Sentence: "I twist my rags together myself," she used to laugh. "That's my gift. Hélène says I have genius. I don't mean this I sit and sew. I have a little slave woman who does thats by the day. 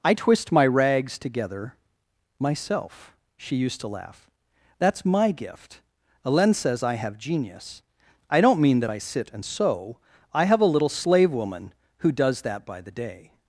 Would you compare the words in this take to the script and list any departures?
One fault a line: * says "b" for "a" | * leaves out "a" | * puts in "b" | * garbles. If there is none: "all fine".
* says "that" for "this"
* says "that" for "thats"